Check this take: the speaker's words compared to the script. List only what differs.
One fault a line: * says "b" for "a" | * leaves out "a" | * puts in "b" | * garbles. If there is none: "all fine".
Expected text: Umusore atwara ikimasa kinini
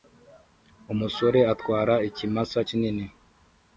all fine